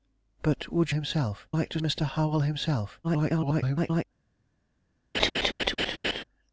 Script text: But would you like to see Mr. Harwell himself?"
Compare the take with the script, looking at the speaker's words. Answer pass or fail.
fail